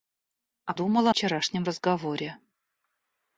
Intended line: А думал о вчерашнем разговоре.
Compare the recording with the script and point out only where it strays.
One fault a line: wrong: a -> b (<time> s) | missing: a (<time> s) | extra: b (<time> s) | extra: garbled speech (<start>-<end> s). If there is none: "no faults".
no faults